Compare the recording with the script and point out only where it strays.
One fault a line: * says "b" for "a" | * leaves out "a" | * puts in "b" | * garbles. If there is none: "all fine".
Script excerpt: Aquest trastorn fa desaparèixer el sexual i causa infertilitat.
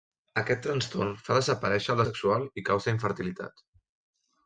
all fine